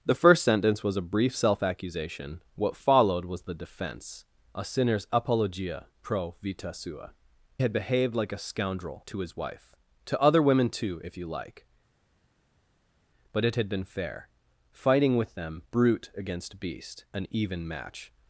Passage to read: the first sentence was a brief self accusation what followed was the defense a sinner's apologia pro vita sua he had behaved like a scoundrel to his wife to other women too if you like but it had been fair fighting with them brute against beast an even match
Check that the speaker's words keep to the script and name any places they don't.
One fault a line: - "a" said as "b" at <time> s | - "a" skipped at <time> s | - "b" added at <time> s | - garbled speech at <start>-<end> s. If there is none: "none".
- "he" skipped at 7.1 s